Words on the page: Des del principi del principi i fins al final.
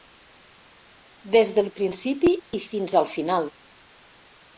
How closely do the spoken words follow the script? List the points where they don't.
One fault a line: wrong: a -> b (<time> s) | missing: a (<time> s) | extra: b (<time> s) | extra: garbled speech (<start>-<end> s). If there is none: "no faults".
missing: del principi (2.3 s)